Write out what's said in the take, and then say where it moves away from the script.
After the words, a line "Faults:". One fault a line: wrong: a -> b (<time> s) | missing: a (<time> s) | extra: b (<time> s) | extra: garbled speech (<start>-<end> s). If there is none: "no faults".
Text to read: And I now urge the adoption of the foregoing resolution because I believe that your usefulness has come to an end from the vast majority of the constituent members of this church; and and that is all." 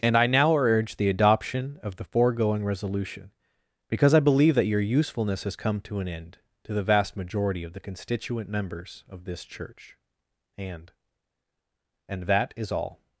And I now urge the adoption of the foregoing resolution because I believe that your usefulness has come to an end to the vast majority of the constituent members of this church; and and that is all."
Faults:
wrong: from -> to (6.6 s)